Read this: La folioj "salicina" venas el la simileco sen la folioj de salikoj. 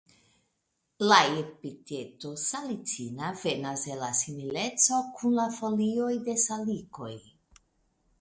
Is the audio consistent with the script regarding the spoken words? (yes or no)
no